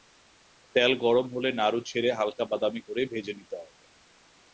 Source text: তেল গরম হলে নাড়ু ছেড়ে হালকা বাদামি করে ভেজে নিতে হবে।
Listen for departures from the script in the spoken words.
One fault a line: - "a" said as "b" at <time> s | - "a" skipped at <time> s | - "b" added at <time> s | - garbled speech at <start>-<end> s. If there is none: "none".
none